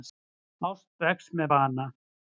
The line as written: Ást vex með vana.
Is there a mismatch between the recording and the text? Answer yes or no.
no